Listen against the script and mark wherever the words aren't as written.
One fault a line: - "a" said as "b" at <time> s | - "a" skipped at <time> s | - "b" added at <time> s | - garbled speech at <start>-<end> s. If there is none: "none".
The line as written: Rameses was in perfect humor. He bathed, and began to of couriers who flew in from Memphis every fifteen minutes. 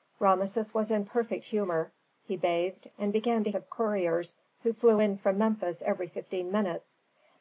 none